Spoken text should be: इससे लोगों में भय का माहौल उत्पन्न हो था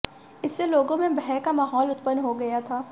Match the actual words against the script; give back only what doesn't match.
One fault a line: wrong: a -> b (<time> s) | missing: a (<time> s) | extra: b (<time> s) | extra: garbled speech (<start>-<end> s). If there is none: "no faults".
extra: गया (2.3 s)